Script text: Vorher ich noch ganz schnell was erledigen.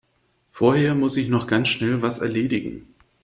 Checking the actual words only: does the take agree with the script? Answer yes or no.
no